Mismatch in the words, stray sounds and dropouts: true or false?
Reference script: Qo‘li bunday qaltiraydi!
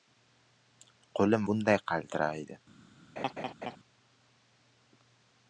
true